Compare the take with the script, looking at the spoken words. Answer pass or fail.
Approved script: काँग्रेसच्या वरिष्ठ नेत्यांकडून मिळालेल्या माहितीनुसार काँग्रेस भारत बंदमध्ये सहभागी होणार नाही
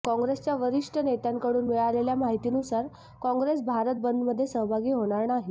pass